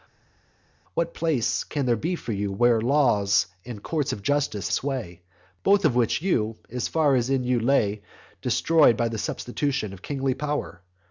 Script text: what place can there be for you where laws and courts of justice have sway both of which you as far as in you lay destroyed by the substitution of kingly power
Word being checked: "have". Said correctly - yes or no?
no